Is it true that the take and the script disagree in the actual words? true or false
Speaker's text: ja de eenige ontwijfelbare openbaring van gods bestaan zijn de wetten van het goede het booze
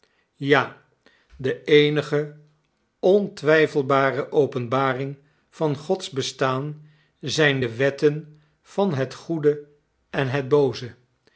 true